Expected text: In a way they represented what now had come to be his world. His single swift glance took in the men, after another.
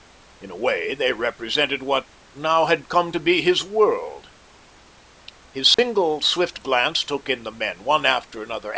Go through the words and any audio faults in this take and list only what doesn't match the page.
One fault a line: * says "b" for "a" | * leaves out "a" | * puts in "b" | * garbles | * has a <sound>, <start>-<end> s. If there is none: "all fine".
* has a dropout, 5.7-5.8 s
* puts in "one"